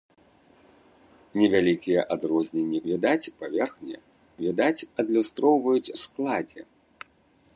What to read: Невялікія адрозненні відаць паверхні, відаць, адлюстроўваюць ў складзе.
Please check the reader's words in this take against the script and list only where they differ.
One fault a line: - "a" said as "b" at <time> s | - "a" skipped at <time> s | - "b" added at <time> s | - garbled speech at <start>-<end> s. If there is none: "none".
none